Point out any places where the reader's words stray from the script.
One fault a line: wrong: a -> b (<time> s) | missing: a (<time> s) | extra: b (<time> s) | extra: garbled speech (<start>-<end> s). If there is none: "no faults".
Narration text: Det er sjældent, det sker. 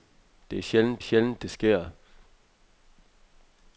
extra: sjældent (1.0 s)